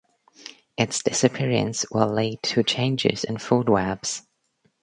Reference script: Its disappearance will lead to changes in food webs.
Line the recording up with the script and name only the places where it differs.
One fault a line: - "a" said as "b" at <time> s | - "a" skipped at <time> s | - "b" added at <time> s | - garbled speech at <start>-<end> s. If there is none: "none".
none